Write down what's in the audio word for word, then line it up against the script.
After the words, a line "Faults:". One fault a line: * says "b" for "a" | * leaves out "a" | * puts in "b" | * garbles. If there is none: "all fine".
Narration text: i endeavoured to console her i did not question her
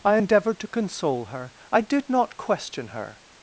i endeavoured to console her i did not question her
Faults:
all fine